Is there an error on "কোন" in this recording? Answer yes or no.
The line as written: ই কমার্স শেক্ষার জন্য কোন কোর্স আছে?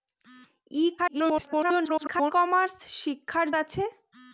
yes